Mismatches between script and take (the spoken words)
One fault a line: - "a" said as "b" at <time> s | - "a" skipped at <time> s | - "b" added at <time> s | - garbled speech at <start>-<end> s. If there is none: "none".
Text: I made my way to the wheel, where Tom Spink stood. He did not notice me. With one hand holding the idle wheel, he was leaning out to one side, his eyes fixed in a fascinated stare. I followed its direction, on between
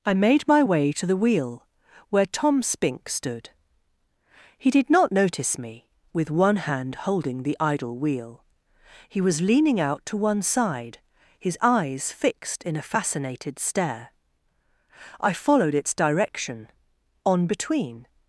none